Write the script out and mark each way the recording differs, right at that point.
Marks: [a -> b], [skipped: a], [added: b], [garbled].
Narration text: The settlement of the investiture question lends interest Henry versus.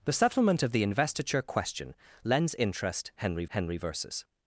The settlement of the investiture question lends interest Henry [added: Henry] versus.